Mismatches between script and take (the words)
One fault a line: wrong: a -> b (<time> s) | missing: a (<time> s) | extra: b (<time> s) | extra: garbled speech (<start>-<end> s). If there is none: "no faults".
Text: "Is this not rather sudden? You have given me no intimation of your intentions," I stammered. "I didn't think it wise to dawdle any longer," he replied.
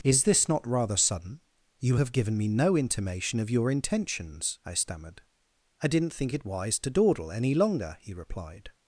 no faults